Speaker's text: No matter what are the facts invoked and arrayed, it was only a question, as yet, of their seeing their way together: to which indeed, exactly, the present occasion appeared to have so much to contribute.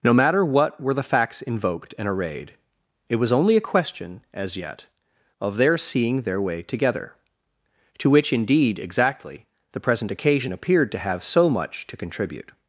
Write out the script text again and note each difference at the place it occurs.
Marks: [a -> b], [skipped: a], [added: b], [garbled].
No matter what [are -> were] the facts invoked and arrayed, it was only a question, as yet, of their seeing their way together: to which indeed, exactly, the present occasion appeared to have so much to contribute.